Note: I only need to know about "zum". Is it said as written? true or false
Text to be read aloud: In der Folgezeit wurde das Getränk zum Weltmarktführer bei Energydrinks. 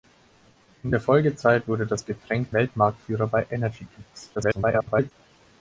false